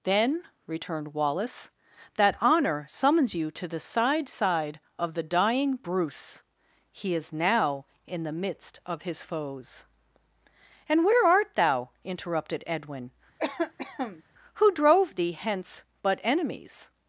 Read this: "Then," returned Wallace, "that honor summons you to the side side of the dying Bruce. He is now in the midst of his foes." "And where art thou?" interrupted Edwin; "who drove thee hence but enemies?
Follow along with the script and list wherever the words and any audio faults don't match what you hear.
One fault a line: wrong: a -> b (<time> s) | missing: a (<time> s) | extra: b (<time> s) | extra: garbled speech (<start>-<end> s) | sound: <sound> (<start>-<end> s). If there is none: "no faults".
sound: cough (13.4-14.2 s)